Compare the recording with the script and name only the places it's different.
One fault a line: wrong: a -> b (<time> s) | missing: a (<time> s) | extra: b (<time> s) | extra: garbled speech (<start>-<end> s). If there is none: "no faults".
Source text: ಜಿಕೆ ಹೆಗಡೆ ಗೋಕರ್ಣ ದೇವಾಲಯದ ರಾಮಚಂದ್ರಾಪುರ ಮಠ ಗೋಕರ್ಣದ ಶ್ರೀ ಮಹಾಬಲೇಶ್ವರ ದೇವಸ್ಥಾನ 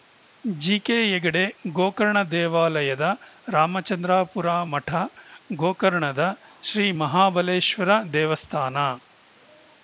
no faults